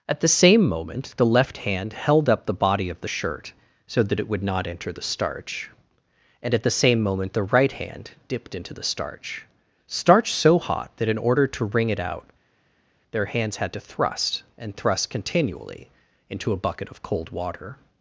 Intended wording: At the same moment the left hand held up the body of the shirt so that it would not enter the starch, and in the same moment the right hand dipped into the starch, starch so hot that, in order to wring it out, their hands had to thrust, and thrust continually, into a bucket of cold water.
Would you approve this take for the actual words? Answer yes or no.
no